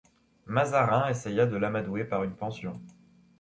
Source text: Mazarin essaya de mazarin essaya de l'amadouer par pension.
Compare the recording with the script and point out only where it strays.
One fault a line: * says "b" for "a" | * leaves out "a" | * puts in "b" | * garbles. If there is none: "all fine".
* leaves out "mazarin essaya de"
* puts in "une"